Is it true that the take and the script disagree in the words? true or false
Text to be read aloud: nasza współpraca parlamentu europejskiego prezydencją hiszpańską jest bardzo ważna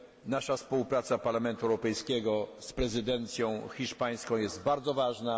true